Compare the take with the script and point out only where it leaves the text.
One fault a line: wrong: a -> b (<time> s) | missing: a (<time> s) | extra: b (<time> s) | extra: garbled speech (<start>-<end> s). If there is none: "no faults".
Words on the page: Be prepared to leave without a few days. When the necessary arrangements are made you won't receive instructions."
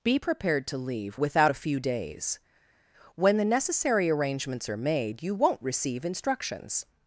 no faults